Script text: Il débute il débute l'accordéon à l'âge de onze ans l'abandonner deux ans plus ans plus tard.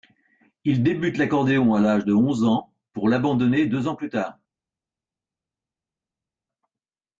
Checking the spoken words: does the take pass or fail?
fail